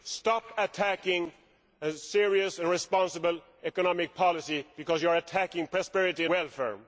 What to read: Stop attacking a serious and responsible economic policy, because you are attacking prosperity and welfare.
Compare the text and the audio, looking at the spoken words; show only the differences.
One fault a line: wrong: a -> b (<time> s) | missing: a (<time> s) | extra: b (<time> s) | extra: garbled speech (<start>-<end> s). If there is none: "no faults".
missing: and (6.2 s)